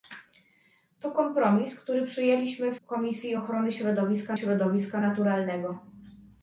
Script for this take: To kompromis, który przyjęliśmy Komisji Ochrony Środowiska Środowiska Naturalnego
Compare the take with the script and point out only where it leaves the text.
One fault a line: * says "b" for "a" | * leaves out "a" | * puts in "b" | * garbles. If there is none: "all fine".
all fine